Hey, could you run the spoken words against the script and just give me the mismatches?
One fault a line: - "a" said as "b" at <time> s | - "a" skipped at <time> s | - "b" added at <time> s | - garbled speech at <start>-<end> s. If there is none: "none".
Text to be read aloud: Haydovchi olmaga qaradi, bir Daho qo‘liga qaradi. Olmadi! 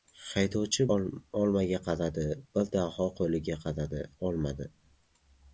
none